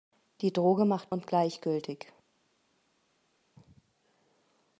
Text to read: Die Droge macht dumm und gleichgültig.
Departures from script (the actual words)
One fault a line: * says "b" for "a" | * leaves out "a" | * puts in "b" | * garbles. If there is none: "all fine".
* leaves out "dumm"